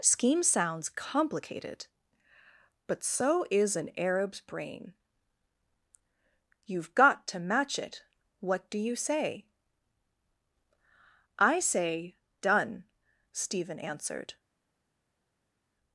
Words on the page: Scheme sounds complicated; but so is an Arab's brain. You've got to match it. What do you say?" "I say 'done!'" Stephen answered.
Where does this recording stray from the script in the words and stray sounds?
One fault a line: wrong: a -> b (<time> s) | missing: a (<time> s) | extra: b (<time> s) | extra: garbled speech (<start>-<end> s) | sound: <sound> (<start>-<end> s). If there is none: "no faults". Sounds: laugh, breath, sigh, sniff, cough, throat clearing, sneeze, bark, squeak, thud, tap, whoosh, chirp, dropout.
no faults